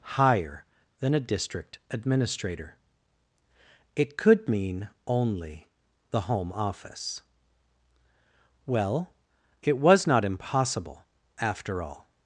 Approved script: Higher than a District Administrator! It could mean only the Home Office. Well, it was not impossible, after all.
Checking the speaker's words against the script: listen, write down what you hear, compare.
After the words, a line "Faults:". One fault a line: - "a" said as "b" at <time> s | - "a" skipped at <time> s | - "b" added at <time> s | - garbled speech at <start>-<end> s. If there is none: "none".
Higher than a District Administrator! It could mean only the Home Office. Well, it was not impossible, after all.
Faults:
none